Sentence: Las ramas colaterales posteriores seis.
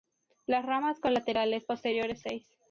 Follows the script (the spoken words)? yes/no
yes